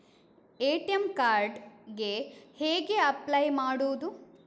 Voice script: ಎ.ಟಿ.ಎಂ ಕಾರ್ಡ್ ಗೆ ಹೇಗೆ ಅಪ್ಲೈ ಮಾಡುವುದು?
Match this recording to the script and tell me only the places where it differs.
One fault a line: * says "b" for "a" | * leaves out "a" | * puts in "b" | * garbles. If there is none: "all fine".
all fine